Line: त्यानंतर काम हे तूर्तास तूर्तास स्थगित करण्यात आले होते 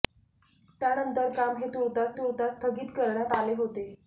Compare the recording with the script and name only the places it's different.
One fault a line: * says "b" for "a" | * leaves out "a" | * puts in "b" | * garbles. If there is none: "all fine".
all fine